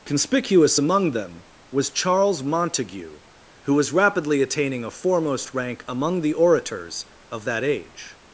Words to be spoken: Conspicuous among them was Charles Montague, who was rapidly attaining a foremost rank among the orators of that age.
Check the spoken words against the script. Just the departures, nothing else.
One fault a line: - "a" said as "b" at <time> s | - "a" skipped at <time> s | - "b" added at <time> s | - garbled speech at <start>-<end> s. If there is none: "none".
none